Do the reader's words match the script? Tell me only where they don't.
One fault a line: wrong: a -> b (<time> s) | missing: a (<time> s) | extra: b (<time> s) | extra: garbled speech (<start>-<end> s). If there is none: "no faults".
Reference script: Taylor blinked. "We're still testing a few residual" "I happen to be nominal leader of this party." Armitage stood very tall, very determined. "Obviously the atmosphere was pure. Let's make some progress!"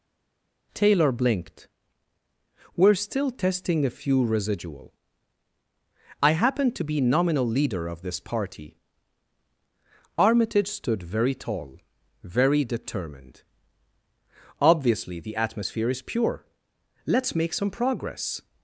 wrong: was -> is (15.9 s)